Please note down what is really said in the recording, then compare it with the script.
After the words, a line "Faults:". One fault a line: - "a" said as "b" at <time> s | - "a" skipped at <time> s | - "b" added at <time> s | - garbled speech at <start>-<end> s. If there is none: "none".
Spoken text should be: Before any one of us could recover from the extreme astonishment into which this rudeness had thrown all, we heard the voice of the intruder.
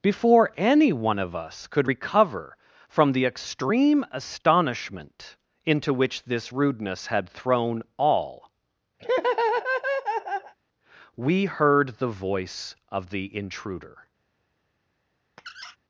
Before any one of us could recover from the extreme astonishment into which this rudeness had thrown all, we heard the voice of the intruder.
Faults:
none